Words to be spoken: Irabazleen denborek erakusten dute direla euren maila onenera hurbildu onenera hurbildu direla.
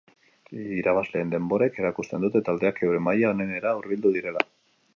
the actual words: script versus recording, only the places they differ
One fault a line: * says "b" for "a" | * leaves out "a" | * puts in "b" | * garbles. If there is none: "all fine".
* says "taldeak" for "direla"
* leaves out "onenera hurbildu"